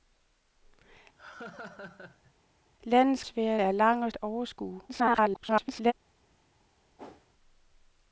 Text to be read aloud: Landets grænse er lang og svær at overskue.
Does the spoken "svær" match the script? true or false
false